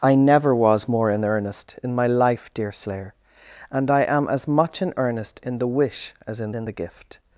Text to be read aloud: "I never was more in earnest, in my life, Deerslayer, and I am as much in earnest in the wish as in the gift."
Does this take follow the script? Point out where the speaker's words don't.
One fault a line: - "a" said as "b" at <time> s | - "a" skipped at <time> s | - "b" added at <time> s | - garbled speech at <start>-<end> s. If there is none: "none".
- "in" added at 6.5 s